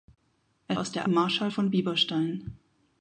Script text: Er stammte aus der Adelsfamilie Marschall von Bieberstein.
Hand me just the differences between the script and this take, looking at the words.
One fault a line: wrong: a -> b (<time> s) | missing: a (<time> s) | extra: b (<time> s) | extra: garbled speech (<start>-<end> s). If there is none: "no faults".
missing: stammte (0.8 s)
missing: Adelsfamilie (1.1 s)